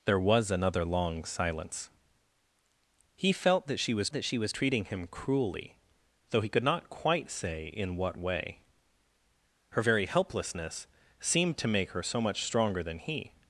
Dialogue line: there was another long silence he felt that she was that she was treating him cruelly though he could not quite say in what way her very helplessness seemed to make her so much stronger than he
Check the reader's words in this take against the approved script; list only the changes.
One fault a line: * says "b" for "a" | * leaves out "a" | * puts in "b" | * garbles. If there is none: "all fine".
all fine